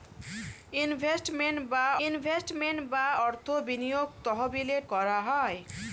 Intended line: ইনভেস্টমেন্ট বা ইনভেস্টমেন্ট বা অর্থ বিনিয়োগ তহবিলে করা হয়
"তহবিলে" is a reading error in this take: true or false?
false